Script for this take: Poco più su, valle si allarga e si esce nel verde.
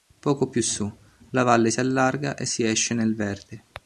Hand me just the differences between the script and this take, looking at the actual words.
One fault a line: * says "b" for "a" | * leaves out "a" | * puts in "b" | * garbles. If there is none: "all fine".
* puts in "la"